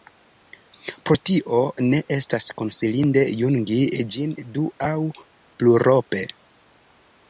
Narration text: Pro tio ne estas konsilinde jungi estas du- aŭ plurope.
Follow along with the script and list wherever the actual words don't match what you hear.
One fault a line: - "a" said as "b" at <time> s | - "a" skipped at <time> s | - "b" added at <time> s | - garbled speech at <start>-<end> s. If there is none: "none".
- "estas" said as "ĝin" at 4.2 s